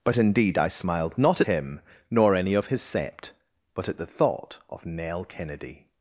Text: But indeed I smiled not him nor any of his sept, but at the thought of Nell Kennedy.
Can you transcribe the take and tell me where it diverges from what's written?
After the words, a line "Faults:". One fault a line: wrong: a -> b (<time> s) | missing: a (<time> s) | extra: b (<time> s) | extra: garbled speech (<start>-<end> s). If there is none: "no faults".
But indeed I smiled not him nor any of his sept, but at the thought of Nell Kennedy.
Faults:
no faults